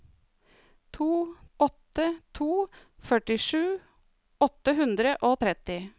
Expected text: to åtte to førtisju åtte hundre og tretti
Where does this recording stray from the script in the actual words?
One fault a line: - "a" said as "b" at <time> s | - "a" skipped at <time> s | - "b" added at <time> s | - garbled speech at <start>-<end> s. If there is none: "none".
none